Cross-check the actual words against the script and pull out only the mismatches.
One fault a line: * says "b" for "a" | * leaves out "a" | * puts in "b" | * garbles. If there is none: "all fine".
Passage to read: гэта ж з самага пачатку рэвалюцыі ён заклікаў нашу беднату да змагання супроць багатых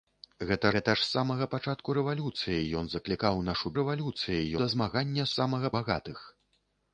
* puts in "гэта"
* says "рэвалюцыі" for "беднату"
* says "самага" for "супроць"